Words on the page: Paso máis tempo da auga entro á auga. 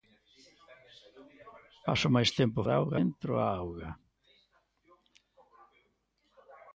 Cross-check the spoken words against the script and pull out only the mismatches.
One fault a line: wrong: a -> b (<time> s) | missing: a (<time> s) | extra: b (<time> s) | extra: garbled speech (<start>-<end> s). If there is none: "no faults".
no faults